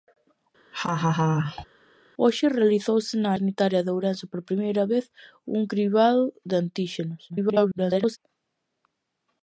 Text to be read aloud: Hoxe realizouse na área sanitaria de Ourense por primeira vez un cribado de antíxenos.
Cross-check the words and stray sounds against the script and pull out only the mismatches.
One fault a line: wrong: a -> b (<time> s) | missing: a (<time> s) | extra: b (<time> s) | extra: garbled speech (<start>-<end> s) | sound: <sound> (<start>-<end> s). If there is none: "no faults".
sound: laugh (0.7-1.7 s)
missing: área (3.3 s)
extra: garbled speech (7.3-8.2 s)